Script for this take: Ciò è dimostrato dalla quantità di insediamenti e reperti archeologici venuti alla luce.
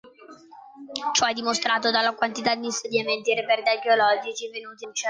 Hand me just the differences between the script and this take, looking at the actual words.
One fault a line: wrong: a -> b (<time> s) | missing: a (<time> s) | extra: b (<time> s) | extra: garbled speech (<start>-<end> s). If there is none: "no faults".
missing: alla (4.9 s)